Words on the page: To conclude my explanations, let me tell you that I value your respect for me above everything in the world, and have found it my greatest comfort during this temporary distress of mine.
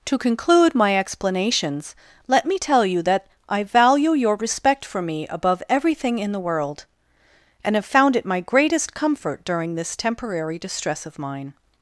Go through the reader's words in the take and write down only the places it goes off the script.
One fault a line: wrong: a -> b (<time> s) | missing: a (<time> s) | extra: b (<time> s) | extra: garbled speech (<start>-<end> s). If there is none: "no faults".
no faults